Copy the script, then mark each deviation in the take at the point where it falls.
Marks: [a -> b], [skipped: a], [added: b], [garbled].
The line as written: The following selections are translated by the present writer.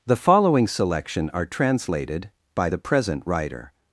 The following [selections -> selection] are translated by the present writer.